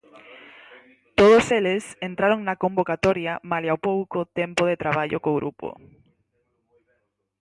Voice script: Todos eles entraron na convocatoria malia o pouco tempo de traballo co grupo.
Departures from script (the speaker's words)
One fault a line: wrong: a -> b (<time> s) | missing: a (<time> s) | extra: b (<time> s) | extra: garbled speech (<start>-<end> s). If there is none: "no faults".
no faults